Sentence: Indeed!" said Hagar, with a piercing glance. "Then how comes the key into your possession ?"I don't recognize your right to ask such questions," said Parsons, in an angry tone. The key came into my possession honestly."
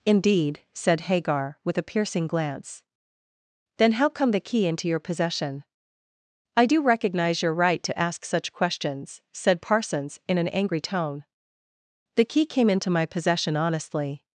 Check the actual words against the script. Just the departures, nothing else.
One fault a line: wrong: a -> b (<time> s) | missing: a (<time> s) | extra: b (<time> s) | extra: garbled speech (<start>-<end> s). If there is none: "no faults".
wrong: comes -> come (4.1 s)
wrong: don't -> do (6.6 s)